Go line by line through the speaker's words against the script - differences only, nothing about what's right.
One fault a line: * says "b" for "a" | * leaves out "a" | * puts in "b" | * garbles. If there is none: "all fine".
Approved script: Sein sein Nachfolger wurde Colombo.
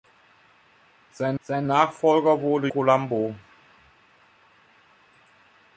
all fine